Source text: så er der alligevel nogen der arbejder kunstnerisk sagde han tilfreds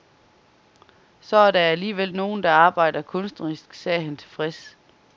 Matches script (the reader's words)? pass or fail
pass